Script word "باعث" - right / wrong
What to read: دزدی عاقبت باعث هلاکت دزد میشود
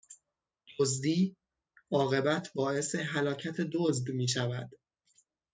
right